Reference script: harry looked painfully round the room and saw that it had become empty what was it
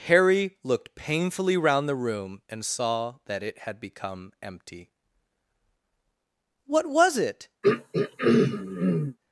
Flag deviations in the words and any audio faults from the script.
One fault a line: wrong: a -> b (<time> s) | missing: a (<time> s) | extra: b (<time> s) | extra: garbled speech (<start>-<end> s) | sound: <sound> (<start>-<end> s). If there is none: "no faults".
sound: throat clearing (7.6-9.2 s)